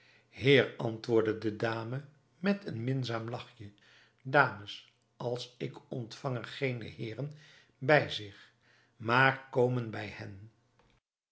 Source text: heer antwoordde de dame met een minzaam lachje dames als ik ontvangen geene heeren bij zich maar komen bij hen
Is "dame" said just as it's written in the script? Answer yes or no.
yes